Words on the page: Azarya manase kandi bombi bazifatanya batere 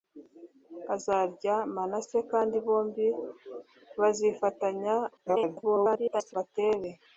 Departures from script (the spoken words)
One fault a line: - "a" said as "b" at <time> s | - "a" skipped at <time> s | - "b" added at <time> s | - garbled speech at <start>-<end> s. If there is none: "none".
- garbled speech at 5.2-6.3 s